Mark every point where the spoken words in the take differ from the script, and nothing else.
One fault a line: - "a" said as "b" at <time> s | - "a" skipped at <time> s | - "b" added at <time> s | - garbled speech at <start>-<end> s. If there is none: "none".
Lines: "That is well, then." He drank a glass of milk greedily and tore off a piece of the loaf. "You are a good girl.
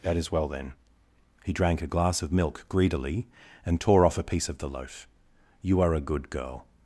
none